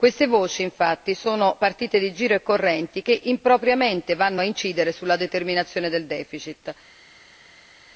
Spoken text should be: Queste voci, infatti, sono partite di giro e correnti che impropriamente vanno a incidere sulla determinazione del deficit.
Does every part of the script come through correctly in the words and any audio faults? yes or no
yes